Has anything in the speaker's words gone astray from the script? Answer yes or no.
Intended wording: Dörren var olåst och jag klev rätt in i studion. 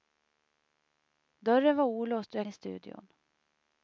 yes